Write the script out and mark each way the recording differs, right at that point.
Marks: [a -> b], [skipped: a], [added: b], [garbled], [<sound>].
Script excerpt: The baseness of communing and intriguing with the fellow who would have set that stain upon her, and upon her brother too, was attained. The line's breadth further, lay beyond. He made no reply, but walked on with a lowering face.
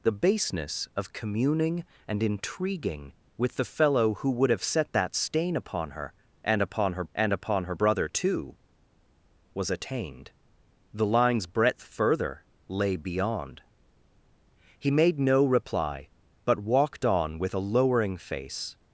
The baseness of communing and intriguing with the fellow who would have set that stain upon her, and upon her [added: and upon her] brother too, was attained. The line's breadth further, lay beyond. He made no reply, but walked on with a lowering face.